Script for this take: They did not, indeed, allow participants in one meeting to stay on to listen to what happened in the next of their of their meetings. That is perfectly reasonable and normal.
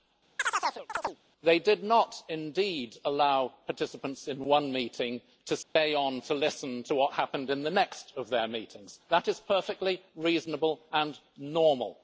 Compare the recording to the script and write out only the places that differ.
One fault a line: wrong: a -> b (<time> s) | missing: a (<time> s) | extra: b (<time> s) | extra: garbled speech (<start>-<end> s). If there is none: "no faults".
missing: of their (8.5 s)